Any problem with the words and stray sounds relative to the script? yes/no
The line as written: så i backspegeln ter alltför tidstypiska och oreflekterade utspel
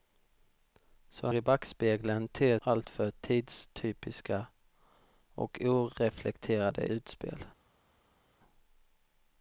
no